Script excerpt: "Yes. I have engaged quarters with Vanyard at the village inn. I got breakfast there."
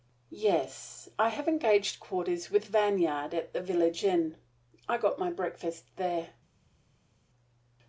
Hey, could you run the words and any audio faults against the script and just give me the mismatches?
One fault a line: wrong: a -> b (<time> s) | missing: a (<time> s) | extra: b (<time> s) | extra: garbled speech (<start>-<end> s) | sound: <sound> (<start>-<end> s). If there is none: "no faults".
extra: my (5.2 s)